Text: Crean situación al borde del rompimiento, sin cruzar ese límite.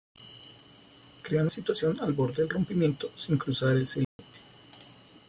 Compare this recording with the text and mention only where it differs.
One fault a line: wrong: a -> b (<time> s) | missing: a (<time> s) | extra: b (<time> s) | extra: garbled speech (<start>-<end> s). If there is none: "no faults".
no faults